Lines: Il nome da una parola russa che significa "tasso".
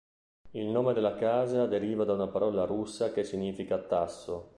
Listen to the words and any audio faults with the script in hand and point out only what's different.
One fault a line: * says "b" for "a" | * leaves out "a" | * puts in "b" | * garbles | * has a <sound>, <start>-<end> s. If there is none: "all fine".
* puts in "della casa deriva"